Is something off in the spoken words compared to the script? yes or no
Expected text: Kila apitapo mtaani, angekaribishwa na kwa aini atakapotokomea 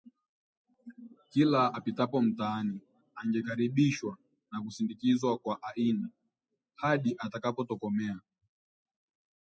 yes